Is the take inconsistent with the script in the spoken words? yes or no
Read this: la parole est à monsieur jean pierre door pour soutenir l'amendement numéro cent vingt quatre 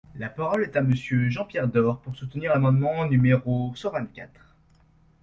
no